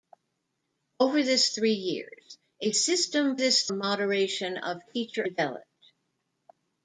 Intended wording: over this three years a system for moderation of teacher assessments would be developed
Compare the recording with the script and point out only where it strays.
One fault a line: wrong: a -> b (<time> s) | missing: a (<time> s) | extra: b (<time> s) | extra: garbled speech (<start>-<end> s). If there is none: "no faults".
wrong: for -> this (3.3 s)
missing: assessments would be (5.3 s)